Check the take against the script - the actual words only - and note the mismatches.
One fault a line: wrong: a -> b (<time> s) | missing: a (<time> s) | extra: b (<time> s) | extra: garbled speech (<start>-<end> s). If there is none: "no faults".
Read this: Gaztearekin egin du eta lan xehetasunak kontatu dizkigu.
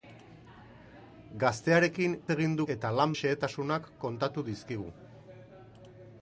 no faults